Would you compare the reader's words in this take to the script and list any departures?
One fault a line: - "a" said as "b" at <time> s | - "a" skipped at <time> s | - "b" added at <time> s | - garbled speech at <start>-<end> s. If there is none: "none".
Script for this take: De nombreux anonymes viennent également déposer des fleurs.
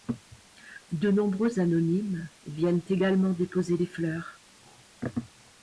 none